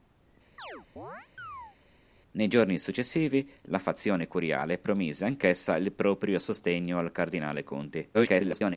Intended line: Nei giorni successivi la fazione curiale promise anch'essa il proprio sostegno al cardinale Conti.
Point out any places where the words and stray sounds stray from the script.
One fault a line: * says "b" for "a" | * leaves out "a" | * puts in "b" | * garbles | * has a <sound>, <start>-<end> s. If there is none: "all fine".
* has a chirp, 0.6-1.8 s
* garbles